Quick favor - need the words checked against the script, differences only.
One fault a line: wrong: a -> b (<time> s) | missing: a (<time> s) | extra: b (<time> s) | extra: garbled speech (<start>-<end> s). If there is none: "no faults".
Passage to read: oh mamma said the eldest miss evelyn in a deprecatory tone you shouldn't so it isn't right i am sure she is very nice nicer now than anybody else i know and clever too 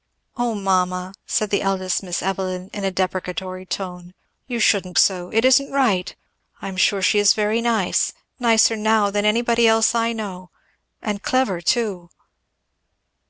no faults